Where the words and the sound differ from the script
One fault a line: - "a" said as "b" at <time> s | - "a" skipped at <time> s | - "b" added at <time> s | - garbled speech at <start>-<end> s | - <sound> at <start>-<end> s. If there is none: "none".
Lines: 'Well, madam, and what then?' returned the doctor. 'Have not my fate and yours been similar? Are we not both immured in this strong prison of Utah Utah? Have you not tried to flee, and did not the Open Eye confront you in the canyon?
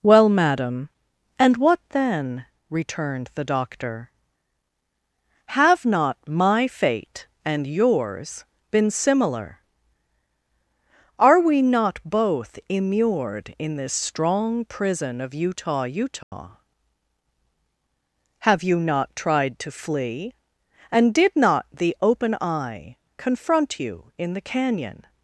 - dropout at 16.2-16.3 s